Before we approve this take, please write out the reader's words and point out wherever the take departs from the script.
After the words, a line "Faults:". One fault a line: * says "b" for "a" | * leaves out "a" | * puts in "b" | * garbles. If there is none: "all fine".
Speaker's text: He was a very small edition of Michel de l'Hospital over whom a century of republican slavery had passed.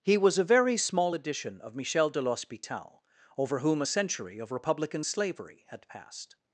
He was a very small edition of Michel de l'Hospital over whom a century of republican slavery had passed.
Faults:
all fine